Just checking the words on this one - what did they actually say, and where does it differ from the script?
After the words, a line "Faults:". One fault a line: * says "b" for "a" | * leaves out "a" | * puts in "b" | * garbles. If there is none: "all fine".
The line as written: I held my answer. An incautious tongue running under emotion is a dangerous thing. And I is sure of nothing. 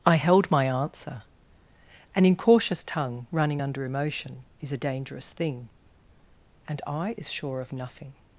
I held my answer. An incautious tongue running under emotion is a dangerous thing. And I is sure of nothing.
Faults:
all fine